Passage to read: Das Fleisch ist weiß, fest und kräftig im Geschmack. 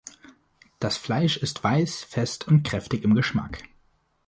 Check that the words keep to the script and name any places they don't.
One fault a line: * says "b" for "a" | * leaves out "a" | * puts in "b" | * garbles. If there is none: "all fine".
all fine